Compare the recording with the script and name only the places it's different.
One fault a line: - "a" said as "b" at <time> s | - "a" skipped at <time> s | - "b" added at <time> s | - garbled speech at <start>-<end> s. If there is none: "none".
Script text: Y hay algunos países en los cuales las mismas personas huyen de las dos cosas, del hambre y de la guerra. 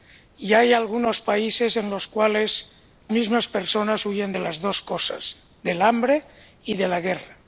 - "las" skipped at 2.7 s